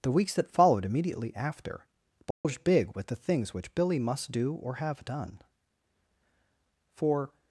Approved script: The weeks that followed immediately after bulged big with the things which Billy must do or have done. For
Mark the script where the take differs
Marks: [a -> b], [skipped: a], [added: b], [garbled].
The weeks that followed immediately after bulged big with the things which Billy must do or have done. For